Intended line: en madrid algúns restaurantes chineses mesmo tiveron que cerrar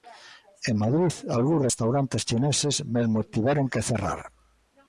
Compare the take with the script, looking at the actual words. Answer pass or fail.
pass